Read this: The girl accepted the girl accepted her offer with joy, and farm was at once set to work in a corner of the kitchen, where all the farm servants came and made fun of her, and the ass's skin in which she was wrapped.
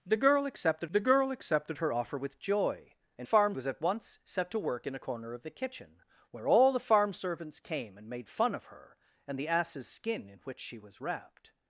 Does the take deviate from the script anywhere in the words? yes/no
no